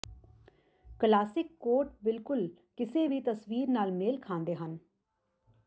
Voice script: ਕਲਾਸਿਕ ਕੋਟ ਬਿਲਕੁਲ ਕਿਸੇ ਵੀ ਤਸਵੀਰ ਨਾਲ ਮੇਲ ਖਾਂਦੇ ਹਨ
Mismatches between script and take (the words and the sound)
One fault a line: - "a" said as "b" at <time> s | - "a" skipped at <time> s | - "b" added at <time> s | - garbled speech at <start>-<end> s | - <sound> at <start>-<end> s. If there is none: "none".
none